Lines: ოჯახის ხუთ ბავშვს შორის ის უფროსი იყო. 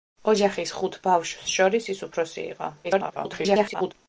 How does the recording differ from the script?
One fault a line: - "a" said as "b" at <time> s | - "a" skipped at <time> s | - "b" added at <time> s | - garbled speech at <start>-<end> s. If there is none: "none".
- garbled speech at 2.8-3.9 s